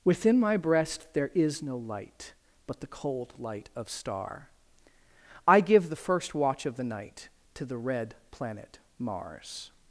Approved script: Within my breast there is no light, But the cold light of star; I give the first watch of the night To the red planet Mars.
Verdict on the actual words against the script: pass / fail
pass